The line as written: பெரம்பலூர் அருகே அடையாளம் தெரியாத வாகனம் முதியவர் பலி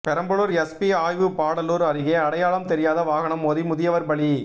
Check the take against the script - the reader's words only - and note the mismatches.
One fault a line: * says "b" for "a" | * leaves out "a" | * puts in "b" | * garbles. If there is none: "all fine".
* puts in "எஸ்பி ஆய்வு பாடாலூர்"
* puts in "மோதி"